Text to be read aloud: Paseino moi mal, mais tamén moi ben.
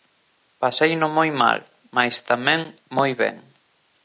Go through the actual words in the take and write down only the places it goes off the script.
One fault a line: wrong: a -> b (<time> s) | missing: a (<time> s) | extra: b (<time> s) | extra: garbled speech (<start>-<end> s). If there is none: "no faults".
no faults